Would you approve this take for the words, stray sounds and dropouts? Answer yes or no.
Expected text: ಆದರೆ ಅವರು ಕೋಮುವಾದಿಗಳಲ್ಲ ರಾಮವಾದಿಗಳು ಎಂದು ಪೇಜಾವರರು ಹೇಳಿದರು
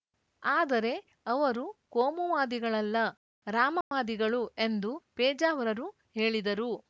no